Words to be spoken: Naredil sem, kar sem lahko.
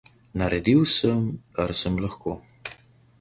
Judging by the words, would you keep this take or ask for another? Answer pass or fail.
pass